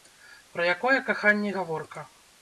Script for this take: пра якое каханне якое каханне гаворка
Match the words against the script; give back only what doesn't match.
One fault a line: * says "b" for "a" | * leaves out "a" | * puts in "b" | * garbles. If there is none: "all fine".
* leaves out "якое каханне"